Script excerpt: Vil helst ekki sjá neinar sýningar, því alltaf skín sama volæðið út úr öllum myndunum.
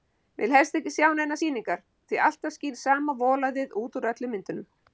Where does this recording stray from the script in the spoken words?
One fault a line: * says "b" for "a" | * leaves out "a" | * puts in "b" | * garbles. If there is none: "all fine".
all fine